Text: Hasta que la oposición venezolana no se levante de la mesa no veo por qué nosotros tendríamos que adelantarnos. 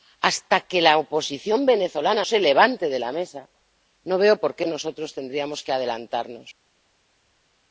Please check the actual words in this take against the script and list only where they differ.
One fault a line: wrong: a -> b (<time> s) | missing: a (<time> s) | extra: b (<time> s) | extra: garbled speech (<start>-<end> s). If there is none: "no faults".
missing: no (2.2 s)